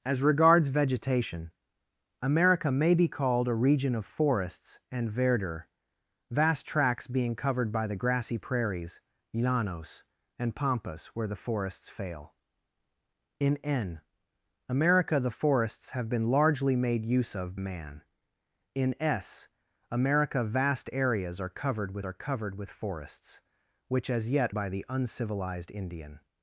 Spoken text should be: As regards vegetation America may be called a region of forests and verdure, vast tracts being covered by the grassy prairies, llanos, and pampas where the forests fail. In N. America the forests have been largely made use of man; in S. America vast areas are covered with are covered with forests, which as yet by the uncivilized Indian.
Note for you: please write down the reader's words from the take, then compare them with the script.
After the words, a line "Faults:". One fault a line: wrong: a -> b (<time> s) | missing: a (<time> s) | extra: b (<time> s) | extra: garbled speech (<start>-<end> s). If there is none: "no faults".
As regards vegetation America may be called a region of forests and verdure, vast tracts being covered by the grassy prairies, llanos, and pampas where the forests fail. In N. America the forests have been largely made use of man; in S. America vast areas are covered with are covered with forests, which as yet by the uncivilized Indian.
Faults:
no faults